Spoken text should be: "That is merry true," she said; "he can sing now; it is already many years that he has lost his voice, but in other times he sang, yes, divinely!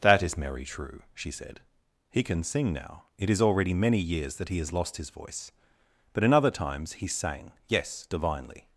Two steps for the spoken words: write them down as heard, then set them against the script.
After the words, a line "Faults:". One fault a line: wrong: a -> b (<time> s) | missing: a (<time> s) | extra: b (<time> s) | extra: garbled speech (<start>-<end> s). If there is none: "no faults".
"That is merry true," she said; "he can sing now; it is already many years that he has lost his voice, but in other times he sang, yes, divinely!
Faults:
no faults